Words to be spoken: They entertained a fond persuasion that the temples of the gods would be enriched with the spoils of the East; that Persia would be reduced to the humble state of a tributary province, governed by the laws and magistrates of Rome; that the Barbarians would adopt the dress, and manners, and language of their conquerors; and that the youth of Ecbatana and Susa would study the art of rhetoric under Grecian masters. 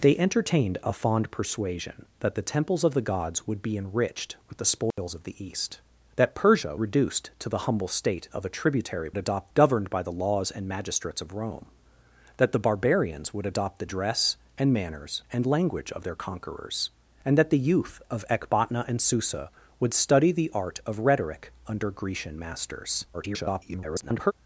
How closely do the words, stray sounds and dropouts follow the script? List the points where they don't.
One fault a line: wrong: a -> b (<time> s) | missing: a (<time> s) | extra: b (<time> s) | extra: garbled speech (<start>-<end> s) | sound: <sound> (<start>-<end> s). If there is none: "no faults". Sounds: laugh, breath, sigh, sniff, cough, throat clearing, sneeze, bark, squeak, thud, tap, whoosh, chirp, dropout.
sound: dropout (4.9-5.0 s)
missing: would be (6.8 s)
wrong: province -> adopt (9.2 s)
extra: garbled speech (23.1-24.3 s)